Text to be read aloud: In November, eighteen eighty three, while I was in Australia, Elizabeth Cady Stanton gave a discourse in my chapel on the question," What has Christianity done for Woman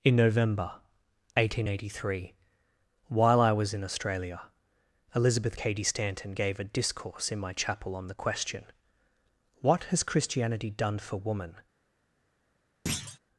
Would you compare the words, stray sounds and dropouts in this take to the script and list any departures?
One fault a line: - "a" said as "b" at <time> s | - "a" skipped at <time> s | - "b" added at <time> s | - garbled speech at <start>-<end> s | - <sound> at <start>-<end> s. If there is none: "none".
- thud at 12.9-13.2 s